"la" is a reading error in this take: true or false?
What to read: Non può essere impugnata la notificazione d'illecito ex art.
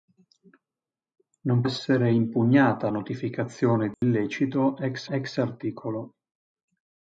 true